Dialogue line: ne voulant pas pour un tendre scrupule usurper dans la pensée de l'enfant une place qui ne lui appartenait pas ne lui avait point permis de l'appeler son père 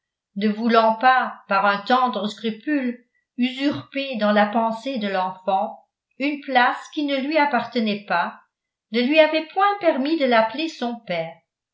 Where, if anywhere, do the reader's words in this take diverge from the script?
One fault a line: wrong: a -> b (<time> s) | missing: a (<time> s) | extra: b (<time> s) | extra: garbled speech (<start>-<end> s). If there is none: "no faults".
wrong: pour -> par (1.5 s)